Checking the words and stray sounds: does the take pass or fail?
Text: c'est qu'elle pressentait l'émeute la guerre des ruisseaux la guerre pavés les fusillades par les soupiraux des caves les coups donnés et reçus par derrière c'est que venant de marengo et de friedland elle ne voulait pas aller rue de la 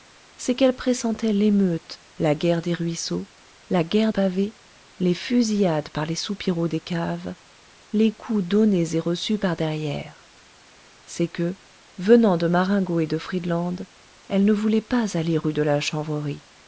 pass